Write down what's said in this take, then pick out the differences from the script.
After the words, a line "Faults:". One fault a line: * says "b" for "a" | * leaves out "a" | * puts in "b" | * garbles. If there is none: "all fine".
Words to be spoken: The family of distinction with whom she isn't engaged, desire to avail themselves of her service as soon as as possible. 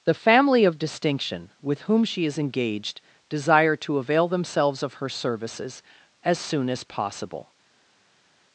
The family of distinction with whom she is engaged, desire to avail themselves of her services as soon as possible.
Faults:
* says "is" for "isn't"
* says "services" for "service"
* leaves out "as"